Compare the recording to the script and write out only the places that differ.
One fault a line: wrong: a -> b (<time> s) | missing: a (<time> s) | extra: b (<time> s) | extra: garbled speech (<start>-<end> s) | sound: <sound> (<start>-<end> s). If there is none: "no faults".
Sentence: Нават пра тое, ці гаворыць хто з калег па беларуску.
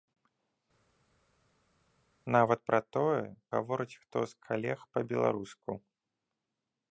missing: ці (3.2 s)